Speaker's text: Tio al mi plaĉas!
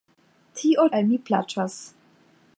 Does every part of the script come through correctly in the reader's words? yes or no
yes